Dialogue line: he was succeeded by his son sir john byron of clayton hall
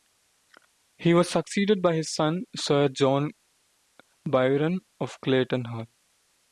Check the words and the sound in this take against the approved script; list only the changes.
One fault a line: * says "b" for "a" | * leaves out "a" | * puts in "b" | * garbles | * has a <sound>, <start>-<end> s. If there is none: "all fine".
all fine